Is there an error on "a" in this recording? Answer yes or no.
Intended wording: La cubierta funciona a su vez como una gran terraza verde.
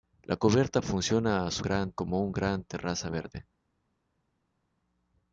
no